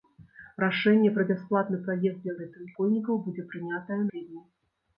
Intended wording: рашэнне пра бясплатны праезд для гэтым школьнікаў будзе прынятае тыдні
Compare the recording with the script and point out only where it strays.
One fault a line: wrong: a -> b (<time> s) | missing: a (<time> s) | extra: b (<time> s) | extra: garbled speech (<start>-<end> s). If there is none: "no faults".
no faults